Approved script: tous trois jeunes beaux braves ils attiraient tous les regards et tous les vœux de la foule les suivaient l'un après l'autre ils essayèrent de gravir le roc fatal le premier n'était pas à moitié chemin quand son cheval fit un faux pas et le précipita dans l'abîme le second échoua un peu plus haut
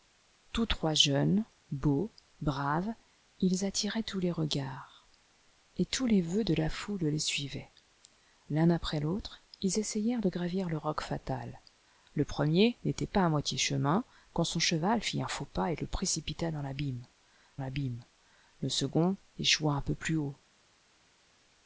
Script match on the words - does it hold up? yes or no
no